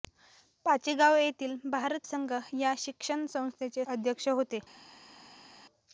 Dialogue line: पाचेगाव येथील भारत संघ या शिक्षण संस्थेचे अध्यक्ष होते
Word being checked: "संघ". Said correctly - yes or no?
yes